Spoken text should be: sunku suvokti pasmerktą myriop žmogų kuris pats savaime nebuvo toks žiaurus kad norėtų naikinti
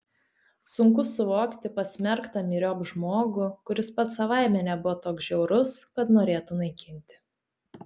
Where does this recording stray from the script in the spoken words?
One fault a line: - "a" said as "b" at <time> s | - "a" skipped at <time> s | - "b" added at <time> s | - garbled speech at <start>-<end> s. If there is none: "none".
none